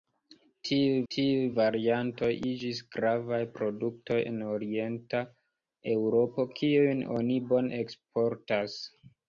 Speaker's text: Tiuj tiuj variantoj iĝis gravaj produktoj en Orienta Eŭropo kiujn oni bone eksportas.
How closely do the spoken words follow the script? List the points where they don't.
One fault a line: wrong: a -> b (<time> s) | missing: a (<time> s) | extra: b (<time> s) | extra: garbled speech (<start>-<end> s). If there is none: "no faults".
no faults